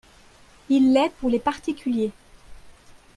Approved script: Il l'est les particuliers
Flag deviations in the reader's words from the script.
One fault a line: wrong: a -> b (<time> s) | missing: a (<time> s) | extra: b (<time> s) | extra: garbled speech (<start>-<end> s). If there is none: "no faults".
extra: pour (1.2 s)